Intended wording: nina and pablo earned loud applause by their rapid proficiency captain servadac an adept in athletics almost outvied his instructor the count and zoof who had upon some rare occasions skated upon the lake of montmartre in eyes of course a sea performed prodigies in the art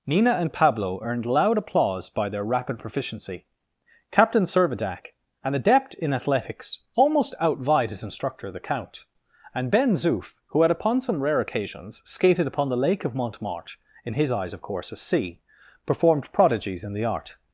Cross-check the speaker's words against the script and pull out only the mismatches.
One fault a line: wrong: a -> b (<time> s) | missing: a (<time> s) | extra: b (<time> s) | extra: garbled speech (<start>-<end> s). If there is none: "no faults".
extra: ben (9.7 s)
extra: his (14.1 s)